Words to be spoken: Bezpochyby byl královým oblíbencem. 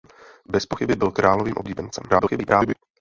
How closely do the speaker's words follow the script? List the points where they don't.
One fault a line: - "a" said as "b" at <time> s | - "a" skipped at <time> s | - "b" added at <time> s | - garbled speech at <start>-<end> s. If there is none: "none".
- garbled speech at 2.1-2.8 s